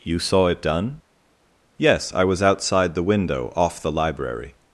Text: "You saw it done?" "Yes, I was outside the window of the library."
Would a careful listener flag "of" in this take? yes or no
yes